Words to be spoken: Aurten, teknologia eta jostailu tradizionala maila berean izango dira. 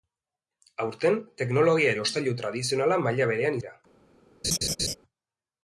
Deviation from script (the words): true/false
true